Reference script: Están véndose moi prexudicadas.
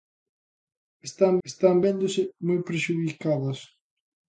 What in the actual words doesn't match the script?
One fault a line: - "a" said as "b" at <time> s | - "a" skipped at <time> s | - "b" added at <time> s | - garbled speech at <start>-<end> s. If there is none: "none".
- "están" added at 1.5 s